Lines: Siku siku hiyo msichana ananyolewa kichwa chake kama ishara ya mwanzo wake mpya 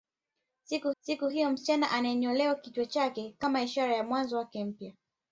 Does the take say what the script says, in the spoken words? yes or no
yes